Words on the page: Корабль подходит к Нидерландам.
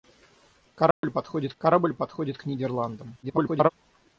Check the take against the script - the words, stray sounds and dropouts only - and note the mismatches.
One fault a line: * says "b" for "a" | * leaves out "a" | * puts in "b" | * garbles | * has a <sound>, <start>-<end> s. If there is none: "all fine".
* has a dropout, 0.9-1.0 s
* puts in "корабль подходит"
* garbles